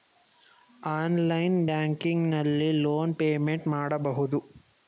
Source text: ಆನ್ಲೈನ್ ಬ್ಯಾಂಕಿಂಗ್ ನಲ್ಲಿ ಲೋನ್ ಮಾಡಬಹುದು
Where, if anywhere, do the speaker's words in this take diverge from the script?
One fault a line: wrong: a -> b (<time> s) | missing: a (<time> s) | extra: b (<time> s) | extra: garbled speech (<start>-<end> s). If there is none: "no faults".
extra: ಪೇಮೆಂಟ್ (3.1 s)